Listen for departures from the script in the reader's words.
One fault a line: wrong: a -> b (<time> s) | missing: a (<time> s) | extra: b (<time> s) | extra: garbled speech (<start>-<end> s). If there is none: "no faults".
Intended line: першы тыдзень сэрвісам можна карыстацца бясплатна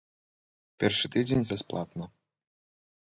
missing: сэрвісам можна карыстацца (1.4 s)